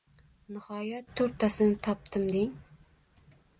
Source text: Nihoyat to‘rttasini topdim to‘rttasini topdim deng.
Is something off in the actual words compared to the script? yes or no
yes